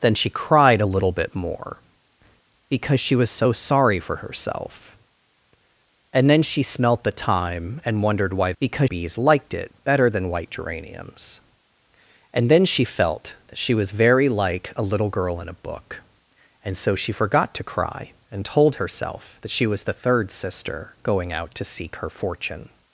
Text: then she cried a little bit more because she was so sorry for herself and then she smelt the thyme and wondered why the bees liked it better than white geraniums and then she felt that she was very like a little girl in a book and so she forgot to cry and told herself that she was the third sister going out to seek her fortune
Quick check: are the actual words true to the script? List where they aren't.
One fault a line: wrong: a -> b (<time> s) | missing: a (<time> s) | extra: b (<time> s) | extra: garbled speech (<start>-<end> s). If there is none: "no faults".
wrong: the -> because (8.6 s)